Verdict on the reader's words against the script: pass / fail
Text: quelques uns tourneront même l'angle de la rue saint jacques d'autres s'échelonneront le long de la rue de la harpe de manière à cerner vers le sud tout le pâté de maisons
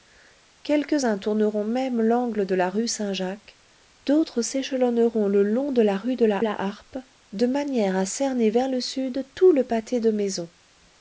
fail